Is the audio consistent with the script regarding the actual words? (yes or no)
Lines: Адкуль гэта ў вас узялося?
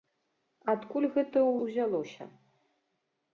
no